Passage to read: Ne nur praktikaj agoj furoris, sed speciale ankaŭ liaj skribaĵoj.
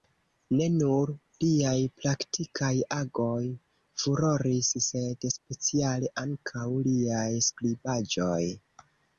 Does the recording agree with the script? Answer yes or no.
no